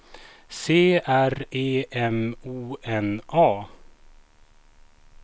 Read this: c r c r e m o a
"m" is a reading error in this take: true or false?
false